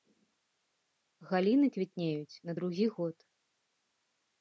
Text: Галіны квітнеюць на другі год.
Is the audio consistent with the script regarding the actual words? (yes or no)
yes